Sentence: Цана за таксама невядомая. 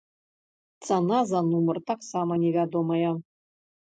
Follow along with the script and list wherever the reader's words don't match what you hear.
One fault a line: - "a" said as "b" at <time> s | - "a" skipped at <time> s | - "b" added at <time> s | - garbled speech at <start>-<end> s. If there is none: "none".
- "нумар" added at 1.5 s